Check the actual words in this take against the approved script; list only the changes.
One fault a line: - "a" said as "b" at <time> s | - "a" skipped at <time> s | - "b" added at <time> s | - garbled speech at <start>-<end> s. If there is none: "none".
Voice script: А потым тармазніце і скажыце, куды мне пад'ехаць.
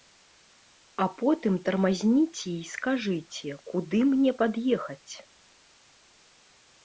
none